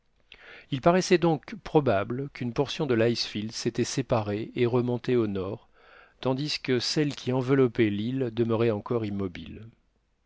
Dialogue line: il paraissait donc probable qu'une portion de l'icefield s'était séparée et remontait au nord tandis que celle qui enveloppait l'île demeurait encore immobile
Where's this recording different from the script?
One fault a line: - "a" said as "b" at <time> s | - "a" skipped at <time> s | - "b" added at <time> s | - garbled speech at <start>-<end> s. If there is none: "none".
none